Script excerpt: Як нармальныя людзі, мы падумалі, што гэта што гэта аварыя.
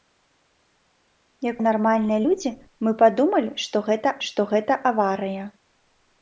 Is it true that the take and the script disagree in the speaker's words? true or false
false